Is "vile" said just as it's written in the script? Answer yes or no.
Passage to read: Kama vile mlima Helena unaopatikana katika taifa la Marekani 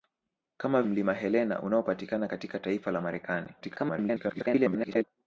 no